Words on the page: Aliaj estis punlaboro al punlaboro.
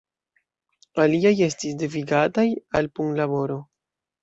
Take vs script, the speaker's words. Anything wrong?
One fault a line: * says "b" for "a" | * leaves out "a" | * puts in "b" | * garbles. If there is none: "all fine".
* says "devigataj" for "punlaboro"